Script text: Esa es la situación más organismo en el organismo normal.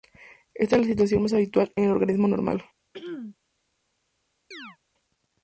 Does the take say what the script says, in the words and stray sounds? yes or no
no